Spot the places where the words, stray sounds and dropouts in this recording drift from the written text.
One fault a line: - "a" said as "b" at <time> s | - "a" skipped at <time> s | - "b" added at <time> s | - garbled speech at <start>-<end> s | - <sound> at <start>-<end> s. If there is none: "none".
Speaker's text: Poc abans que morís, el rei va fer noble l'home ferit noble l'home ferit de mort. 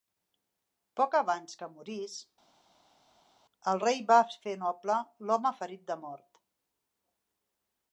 - "noble l'home ferit" skipped at 5.8 s